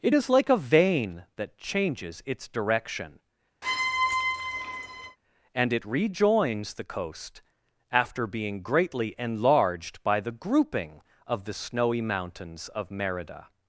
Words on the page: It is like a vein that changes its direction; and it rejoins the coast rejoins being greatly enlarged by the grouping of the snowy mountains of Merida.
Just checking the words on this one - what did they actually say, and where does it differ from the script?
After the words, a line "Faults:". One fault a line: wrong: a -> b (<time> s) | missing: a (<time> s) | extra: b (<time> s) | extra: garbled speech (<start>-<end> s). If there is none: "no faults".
It is like a vein that changes its direction; and it rejoins the coast after being greatly enlarged by the grouping of the snowy mountains of Merida.
Faults:
wrong: rejoins -> after (7.9 s)